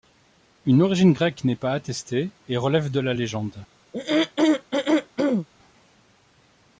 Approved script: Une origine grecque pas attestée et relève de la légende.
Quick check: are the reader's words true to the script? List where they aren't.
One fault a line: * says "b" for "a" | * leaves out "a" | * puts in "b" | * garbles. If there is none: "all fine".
* puts in "n'est"